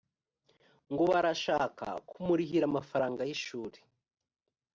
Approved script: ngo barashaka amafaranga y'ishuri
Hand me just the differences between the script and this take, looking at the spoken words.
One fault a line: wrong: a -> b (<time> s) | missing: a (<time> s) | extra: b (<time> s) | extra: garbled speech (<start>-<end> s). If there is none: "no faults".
extra: kumurihira (2.1 s)